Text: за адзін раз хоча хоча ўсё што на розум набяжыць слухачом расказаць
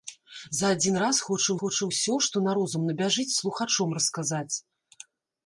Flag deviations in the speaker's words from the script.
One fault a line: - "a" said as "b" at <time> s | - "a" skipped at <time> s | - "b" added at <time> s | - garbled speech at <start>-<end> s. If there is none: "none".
none